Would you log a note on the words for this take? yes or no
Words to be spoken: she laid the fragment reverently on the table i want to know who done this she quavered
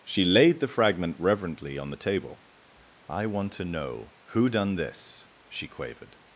no